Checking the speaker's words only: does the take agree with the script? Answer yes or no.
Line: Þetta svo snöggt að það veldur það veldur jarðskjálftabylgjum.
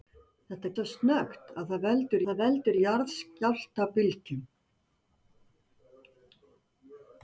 yes